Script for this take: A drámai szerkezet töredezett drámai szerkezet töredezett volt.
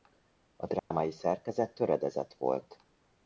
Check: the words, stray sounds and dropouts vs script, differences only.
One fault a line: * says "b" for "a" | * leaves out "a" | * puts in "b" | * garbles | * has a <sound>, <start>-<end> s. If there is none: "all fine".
* has a dropout, 0.8-0.9 s
* leaves out "drámai szerkezet töredezett"